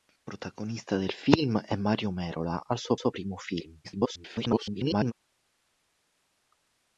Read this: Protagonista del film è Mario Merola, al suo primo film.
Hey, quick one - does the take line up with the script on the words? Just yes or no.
no